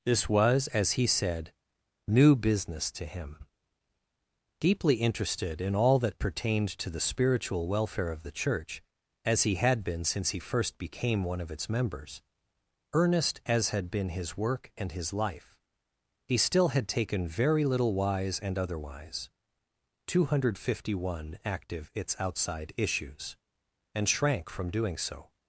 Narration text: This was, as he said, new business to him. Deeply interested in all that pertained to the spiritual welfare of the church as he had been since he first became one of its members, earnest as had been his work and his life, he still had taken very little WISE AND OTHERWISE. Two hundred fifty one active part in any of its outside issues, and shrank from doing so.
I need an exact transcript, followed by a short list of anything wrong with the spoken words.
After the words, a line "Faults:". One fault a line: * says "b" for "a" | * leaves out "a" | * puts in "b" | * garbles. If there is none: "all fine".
This was, as he said, new business to him. Deeply interested in all that pertained to the spiritual welfare of the church as he had been since he first became one of its members, earnest as had been his work and his life, he still had taken very little WISE AND OTHERWISE. Two hundred fifty one active its outside issues, and shrank from doing so.
Faults:
* leaves out "part in any of"